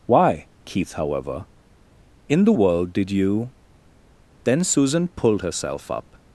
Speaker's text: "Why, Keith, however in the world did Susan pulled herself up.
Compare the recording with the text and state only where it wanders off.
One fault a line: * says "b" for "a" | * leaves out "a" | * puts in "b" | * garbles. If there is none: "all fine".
* puts in "you Then"